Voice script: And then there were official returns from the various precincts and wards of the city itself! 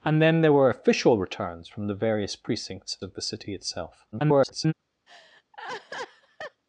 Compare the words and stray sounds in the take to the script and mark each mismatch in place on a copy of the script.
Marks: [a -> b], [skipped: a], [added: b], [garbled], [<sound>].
And then there were official returns from the various precincts [skipped: and wards] of the city itself! [garbled] [laugh]